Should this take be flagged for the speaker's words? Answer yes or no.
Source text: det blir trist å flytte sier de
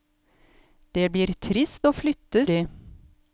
yes